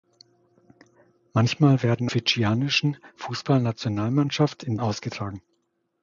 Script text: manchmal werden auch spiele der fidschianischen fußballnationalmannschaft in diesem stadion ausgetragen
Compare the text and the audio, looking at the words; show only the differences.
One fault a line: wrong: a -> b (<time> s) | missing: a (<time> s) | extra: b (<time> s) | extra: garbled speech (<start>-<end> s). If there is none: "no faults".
missing: auch spiele der (2.1 s)
missing: diesem stadion (4.8 s)